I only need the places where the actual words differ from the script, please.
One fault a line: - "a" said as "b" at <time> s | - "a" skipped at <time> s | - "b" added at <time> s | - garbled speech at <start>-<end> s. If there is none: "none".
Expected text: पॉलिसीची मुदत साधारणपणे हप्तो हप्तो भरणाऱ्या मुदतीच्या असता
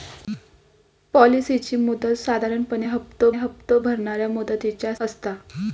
none